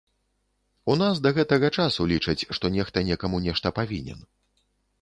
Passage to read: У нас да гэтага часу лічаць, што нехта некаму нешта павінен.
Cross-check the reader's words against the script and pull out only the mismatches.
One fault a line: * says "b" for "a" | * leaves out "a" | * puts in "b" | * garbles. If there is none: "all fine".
all fine